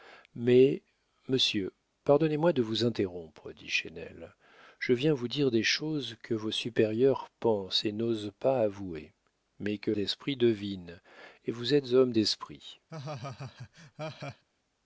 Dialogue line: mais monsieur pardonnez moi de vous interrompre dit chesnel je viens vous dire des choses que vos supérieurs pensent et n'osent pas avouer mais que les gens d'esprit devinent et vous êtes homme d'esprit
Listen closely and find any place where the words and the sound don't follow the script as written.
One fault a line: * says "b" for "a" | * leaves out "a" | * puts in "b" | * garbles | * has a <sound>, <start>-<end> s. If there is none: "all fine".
* leaves out "les gens"
* has a laugh, 12.9-14.4 s